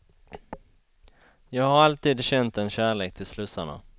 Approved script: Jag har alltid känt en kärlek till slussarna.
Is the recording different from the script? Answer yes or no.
no